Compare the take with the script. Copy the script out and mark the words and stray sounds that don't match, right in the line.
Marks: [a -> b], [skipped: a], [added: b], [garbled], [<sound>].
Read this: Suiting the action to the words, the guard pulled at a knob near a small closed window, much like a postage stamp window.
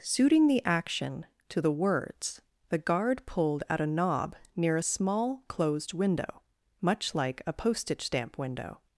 Suiting the action to the words, the guard pulled at a knob near a small closed window, much like a postage stamp window.